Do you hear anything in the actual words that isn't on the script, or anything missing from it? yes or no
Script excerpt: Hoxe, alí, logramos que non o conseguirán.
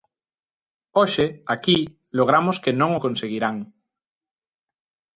yes